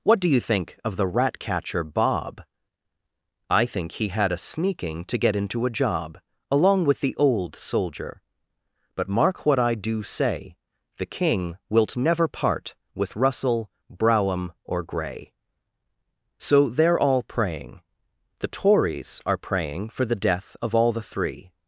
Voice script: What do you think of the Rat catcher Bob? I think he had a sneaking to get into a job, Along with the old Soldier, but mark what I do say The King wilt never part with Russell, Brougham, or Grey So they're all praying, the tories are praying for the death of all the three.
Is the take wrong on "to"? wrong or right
right